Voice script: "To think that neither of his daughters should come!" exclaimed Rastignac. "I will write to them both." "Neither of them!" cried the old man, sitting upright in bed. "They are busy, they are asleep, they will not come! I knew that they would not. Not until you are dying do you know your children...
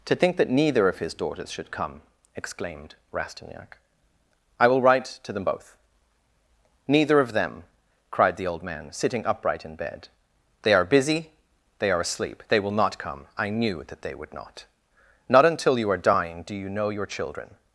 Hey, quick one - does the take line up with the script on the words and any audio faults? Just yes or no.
yes